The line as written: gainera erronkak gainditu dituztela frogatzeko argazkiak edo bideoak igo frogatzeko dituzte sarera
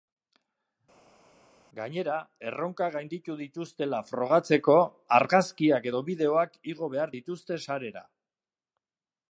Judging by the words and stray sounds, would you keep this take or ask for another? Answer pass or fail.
fail